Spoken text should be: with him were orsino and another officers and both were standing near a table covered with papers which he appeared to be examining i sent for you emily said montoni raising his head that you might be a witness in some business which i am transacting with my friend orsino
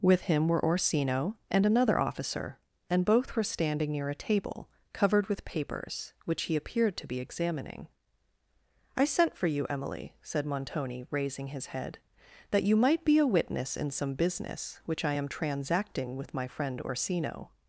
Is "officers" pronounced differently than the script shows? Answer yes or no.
yes